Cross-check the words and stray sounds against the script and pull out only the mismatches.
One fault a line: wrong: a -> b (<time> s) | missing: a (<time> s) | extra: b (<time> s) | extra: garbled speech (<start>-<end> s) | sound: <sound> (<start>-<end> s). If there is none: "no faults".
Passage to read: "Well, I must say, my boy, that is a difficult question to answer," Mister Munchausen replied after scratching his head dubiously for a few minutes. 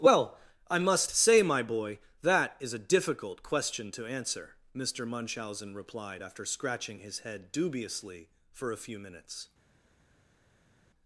no faults